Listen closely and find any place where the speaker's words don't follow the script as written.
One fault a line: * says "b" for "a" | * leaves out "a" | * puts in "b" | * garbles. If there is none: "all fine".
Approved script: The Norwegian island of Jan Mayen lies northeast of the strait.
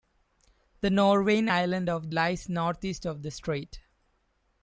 * leaves out "Jan Mayen"